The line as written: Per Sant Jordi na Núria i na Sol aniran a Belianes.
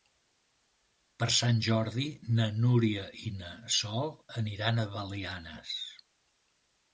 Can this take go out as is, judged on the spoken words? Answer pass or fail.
pass